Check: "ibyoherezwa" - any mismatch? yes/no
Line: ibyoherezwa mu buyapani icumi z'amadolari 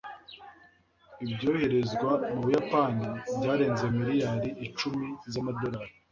no